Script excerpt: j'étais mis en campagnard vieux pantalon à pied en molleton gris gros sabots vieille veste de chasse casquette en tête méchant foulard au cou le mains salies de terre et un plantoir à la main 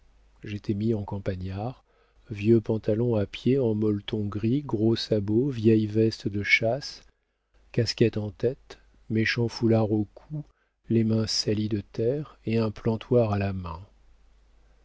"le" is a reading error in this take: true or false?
true